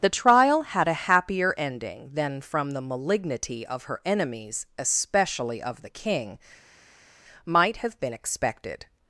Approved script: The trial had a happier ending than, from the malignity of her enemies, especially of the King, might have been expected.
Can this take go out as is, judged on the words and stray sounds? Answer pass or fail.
pass